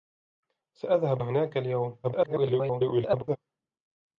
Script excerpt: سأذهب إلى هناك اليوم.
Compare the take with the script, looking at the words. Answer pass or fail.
fail